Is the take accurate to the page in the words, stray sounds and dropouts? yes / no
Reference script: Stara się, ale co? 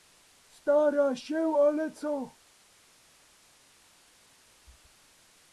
yes